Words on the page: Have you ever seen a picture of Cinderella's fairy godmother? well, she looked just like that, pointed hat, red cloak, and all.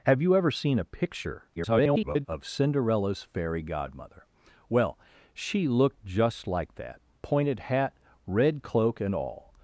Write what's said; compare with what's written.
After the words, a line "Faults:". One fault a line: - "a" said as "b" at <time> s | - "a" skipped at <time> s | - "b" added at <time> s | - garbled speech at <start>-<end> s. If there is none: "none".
Have you ever seen a picture [garbled] of Cinderella's fairy godmother? well, she looked just like that, pointed hat, red cloak, and all.
Faults:
- garbled speech at 1.6-2.3 s